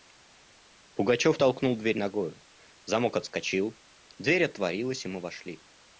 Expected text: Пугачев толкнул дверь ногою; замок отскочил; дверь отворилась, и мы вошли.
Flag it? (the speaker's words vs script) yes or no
no